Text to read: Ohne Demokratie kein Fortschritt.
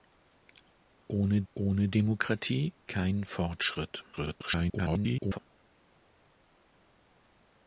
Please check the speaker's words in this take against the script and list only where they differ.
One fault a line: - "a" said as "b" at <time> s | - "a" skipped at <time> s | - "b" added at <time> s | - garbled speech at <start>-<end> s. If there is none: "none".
- "ohne" added at 1.5 s
- garbled speech at 4.1-5.4 s